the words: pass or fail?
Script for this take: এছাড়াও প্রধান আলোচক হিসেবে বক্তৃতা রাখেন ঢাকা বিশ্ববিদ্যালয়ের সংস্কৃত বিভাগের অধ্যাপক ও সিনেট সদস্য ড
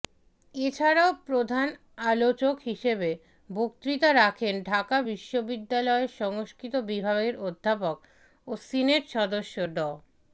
pass